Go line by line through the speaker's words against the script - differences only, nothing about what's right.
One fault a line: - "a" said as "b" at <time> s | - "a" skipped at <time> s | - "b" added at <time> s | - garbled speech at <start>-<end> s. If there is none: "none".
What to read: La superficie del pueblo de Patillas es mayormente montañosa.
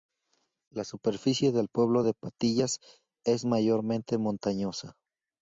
none